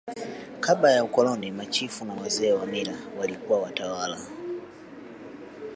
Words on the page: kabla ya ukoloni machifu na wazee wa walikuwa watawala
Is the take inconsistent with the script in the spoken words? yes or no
yes